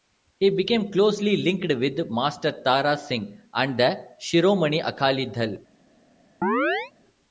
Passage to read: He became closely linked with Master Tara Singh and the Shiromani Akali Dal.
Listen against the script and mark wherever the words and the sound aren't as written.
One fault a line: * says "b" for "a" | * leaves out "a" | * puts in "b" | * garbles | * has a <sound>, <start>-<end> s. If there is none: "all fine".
* has a chirp, 6.4-6.9 s